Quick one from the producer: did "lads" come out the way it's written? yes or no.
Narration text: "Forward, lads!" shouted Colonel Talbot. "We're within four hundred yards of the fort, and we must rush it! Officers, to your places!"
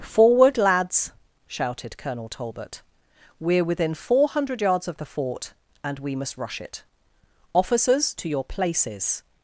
yes